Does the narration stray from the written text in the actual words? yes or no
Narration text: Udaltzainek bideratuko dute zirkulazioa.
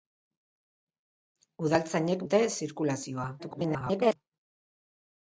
yes